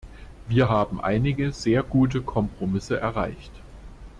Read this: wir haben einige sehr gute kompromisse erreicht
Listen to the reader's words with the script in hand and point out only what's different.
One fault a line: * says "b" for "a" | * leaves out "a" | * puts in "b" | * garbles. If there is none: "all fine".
all fine